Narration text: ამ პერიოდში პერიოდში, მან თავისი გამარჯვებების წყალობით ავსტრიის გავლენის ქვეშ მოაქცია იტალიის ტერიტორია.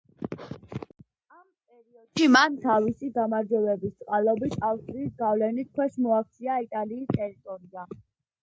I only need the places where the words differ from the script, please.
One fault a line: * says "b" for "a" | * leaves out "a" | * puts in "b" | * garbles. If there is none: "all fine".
* leaves out "პერიოდში"